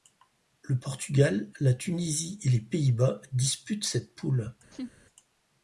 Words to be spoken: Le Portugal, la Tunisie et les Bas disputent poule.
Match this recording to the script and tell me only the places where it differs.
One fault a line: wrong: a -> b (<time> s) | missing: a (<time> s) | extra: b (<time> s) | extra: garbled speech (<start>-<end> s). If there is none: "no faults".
extra: Pays (2.6 s)
extra: cette (3.8 s)